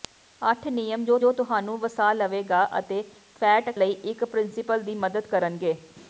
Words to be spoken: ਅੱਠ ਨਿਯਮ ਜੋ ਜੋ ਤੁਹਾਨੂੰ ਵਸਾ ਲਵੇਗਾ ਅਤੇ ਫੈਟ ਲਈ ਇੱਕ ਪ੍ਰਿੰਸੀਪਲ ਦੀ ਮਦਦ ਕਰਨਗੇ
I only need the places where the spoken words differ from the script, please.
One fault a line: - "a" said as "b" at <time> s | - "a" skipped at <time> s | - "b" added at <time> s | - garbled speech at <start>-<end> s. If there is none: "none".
none